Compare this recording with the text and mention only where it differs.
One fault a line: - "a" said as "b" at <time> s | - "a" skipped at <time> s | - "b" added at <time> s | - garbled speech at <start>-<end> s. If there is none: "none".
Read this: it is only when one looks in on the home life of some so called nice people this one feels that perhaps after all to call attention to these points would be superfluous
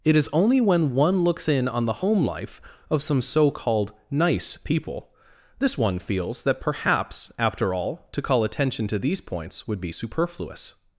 none